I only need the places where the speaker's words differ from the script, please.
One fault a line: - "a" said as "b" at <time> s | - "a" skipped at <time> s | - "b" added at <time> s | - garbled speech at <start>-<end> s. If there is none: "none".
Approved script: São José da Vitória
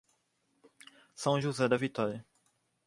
none